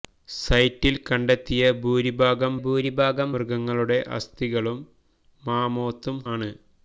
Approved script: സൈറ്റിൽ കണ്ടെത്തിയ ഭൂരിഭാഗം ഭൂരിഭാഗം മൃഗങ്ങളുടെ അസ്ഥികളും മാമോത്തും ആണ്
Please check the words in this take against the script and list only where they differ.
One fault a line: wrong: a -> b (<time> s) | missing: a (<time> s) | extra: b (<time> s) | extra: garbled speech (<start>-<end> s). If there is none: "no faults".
no faults